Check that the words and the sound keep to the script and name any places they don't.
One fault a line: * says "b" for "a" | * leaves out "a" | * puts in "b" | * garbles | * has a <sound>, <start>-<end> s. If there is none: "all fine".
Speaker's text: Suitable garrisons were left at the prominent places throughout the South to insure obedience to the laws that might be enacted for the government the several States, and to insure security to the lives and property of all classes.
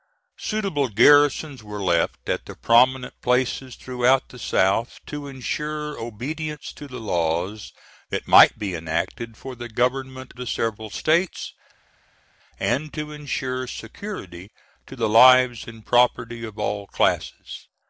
all fine